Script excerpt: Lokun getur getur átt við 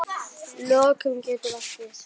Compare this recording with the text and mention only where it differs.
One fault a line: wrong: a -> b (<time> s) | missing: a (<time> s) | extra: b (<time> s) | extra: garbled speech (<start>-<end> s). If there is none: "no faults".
missing: getur (1.5 s)